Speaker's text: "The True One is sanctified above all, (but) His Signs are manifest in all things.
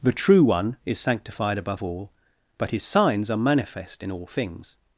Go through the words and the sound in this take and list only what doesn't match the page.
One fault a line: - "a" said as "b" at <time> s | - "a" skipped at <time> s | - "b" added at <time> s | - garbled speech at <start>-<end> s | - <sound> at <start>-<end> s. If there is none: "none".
none